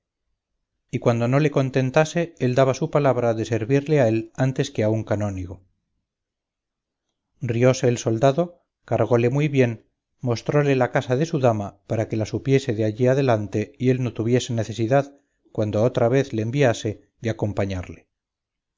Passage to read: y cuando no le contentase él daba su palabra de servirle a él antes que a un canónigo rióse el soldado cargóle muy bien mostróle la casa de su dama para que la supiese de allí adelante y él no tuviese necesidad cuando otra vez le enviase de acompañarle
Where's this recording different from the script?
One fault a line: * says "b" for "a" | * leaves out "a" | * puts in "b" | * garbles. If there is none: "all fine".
all fine